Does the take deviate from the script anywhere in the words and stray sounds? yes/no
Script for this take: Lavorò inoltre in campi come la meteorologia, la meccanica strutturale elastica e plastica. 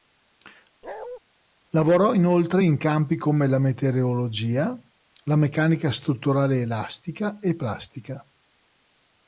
yes